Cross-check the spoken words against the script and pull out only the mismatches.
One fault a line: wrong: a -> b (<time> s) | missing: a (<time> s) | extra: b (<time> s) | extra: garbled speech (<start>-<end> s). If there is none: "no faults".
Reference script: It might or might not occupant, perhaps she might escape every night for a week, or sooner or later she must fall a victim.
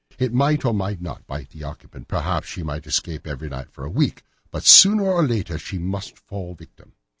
extra: bite the (1.3 s)
wrong: or -> but (4.5 s)